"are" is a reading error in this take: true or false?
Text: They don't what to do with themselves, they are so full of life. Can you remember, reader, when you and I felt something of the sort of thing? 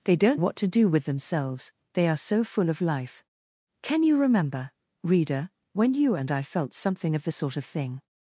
false